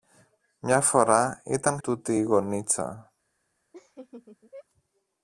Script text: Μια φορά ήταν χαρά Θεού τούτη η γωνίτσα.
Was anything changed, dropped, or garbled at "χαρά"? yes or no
yes